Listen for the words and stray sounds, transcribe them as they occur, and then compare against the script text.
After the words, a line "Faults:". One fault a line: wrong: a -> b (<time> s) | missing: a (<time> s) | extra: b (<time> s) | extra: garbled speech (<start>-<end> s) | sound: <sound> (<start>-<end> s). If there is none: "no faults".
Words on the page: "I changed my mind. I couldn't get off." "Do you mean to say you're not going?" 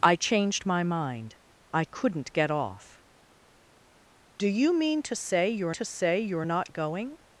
"I changed my mind. I couldn't get off." "Do you mean to say you're to say you're not going?"
Faults:
extra: to say you're (5.7 s)